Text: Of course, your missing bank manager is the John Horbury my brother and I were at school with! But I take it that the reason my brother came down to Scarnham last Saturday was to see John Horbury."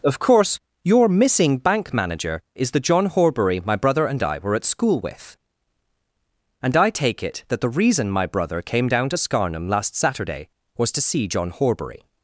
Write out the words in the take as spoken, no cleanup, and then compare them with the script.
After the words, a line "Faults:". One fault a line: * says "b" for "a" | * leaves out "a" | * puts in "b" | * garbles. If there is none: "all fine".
Of course, your missing bank manager is the John Horbury my brother and I were at school with! And I take it that the reason my brother came down to Scarnham last Saturday was to see John Horbury."
Faults:
* says "And" for "But"